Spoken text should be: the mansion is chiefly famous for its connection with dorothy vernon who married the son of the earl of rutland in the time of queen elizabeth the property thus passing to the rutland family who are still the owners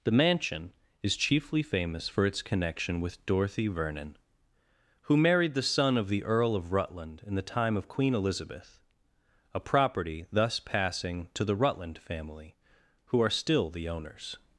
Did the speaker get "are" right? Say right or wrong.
right